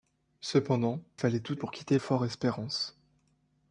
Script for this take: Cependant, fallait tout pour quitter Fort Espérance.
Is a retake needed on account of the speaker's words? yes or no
no